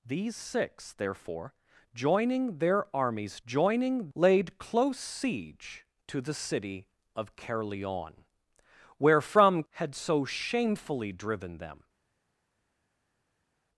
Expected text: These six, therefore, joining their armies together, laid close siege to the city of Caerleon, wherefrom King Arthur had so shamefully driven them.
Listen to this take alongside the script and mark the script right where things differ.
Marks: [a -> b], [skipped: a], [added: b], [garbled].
These six, therefore, joining their armies [together, -> joining] laid close siege to the city of Caerleon, wherefrom [skipped: King Arthur] had so shamefully driven them.